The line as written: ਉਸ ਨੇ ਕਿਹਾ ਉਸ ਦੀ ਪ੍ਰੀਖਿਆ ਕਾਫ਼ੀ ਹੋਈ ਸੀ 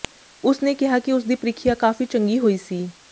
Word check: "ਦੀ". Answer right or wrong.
right